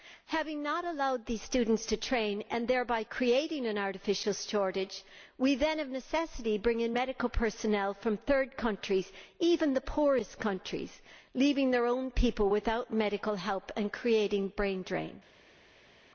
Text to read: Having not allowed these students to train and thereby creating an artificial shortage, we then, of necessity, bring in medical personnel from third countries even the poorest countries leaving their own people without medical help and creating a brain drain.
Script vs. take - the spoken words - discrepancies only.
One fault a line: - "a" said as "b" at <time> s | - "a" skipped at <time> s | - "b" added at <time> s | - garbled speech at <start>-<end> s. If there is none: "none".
none